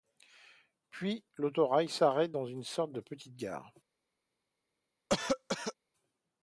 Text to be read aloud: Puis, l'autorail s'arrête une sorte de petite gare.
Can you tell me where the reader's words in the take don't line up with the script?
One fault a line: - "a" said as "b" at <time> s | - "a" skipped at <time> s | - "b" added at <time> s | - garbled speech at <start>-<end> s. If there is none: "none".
- "dans" added at 2.3 s